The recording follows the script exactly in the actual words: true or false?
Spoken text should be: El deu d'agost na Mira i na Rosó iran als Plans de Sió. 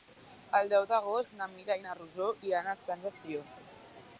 true